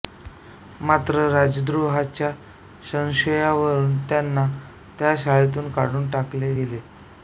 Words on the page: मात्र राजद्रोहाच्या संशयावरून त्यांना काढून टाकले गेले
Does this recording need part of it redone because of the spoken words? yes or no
yes